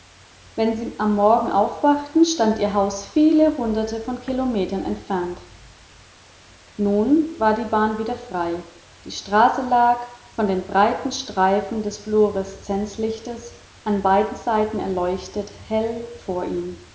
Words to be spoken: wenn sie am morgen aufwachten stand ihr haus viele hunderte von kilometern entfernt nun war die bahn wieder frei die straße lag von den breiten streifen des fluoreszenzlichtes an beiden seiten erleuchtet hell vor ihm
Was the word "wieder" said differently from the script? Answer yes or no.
no